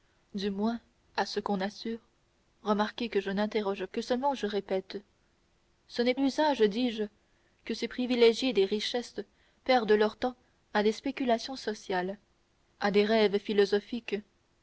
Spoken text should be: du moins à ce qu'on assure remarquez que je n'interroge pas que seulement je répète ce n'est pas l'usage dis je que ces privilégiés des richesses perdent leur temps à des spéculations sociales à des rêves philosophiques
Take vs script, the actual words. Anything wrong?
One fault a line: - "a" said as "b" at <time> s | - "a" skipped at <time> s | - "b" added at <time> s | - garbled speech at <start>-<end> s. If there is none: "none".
- "pas" skipped at 3.9 s
- "pas" skipped at 6.2 s